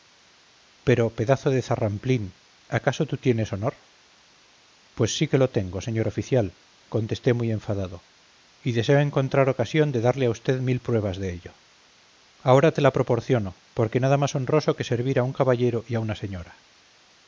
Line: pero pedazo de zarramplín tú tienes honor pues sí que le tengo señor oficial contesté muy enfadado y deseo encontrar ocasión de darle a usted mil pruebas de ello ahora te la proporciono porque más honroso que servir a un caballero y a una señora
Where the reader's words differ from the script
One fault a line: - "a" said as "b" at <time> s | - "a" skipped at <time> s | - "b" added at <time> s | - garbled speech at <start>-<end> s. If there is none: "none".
- "acaso" added at 2.7 s
- "le" said as "lo" at 5.4 s
- "nada" added at 14.0 s